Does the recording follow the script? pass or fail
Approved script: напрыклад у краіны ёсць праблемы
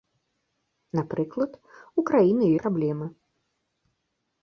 fail